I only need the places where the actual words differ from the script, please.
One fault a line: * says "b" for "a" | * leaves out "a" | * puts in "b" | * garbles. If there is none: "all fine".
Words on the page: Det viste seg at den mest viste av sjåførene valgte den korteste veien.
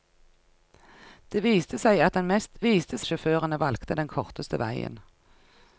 all fine